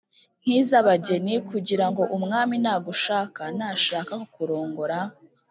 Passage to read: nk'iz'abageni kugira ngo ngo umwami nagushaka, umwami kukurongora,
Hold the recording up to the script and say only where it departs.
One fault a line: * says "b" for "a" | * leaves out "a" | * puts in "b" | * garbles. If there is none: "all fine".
* leaves out "ngo"
* says "nashaka" for "umwami"